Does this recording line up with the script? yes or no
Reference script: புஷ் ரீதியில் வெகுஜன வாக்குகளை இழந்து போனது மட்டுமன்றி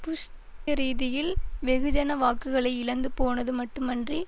yes